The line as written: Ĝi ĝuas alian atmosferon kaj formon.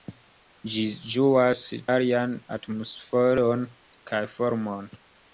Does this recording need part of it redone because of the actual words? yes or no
no